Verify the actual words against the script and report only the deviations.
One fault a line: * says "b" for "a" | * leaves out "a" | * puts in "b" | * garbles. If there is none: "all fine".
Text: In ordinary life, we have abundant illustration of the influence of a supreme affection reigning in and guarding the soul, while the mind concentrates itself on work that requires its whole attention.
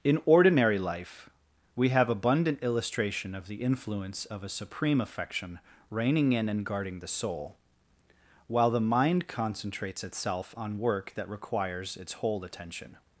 all fine